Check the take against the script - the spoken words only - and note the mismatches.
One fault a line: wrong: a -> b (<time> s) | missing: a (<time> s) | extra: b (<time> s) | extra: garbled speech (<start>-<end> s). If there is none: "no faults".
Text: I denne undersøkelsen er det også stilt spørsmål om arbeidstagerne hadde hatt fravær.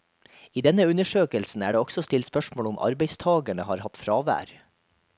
wrong: hadde -> har (3.7 s)